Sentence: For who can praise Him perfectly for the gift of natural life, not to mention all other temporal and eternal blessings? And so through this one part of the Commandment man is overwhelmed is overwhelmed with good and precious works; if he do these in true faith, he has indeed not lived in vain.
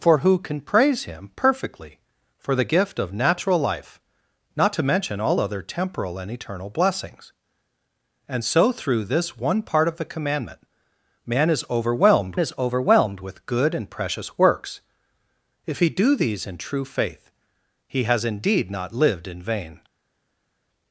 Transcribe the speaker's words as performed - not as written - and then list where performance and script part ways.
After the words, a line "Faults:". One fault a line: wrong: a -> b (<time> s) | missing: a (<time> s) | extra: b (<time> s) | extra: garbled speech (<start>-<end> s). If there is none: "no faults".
For who can praise Him perfectly for the gift of natural life, not to mention all other temporal and eternal blessings? And so through this one part of the Commandment man is overwhelmed is overwhelmed with good and precious works; if he do these in true faith, he has indeed not lived in vain.
Faults:
no faults